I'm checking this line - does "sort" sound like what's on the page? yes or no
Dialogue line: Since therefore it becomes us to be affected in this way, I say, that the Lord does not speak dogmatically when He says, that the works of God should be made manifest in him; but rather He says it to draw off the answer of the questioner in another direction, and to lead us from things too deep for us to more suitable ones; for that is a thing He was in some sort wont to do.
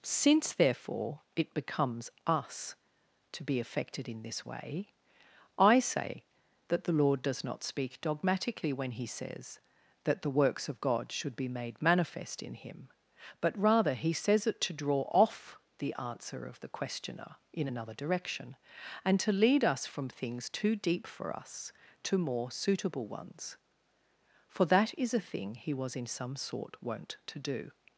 yes